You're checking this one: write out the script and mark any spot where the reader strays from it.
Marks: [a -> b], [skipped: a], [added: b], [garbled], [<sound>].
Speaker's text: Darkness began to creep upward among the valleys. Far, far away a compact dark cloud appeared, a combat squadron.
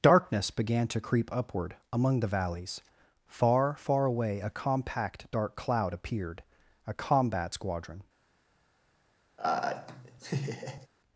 Darkness began to creep upward among the valleys. Far, far away a compact dark cloud appeared, a combat squadron. [laugh]